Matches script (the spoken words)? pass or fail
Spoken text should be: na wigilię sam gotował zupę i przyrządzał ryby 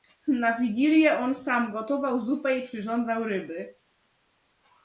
fail